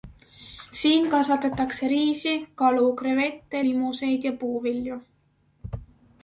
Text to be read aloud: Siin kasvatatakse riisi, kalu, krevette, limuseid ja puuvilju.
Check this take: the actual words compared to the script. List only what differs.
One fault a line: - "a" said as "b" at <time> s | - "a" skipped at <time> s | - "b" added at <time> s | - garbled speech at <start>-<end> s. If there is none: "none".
none